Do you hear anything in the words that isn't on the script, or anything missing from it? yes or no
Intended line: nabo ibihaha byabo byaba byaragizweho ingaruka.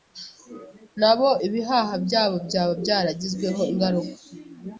no